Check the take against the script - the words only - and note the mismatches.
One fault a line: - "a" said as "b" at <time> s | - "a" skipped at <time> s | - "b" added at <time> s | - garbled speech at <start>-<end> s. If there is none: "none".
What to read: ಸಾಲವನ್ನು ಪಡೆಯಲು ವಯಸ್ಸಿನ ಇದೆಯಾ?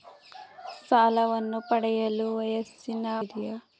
none